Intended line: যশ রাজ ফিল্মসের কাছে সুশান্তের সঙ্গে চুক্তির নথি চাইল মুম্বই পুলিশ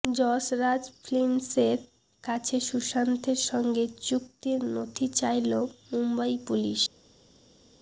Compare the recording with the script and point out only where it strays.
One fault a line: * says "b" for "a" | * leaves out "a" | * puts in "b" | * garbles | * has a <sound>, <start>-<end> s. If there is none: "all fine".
all fine